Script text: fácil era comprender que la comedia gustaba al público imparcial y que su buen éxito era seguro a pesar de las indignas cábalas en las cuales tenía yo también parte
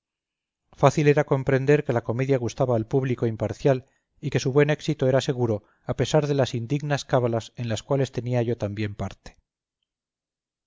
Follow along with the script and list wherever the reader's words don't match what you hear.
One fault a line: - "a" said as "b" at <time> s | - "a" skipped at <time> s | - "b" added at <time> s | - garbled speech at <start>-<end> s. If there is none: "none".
none